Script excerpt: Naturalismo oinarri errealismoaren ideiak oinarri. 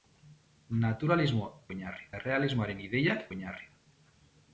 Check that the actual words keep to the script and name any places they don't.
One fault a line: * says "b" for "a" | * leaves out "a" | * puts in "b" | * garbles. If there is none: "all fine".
all fine